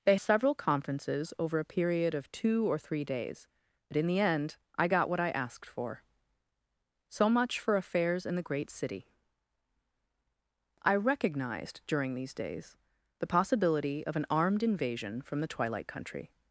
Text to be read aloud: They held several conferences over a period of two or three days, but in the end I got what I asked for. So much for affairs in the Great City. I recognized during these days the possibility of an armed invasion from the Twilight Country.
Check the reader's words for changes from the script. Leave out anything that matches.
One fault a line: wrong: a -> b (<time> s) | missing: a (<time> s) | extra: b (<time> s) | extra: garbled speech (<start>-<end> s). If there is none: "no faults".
missing: held (0.1 s)